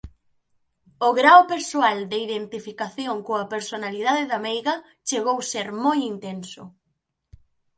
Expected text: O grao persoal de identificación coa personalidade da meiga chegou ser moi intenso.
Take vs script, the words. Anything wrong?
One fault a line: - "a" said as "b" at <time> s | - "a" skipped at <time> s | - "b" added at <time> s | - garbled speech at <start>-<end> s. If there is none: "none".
none